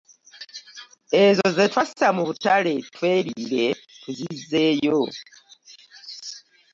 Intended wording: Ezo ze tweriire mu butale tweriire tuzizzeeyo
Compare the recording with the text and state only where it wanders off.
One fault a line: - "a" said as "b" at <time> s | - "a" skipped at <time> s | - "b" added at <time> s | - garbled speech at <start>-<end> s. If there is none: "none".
- "tweriire" said as "twassa" at 1.7 s